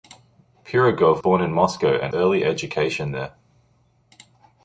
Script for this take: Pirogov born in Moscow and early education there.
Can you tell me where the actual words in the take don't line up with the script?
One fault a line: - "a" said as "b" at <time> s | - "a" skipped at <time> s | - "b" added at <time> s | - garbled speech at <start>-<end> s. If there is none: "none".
none